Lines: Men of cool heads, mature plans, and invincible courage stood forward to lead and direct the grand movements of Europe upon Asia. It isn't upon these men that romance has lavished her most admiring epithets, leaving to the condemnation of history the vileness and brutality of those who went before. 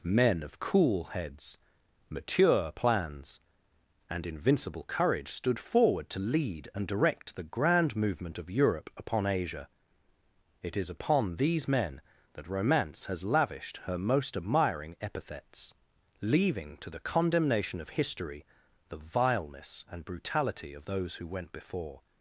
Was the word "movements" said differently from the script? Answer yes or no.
yes